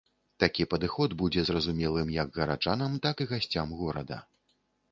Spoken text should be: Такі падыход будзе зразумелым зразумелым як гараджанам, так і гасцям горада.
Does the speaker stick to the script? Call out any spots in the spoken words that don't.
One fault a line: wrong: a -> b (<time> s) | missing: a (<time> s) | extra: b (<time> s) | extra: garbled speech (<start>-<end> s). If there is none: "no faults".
missing: зразумелым (2.1 s)